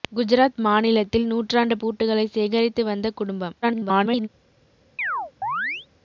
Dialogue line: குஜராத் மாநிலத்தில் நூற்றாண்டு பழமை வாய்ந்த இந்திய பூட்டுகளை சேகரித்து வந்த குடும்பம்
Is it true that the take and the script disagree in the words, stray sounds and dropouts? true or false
true